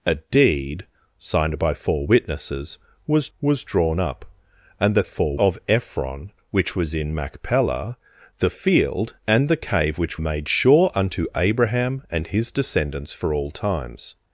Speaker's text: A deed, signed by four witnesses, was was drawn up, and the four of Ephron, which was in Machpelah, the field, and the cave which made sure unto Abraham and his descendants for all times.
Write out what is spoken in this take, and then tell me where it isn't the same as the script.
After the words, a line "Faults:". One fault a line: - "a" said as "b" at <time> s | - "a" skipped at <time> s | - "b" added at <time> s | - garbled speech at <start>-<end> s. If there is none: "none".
A deed, signed by four witnesses, was was drawn up, and the four of Ephron, which was in Machpelah, the field, and the cave which made sure unto Abraham and his descendants for all times.
Faults:
none